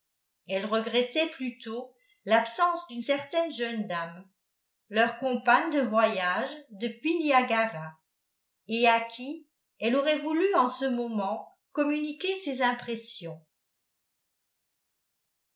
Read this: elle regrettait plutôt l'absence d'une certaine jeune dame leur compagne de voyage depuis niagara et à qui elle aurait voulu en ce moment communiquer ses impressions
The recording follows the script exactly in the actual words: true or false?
true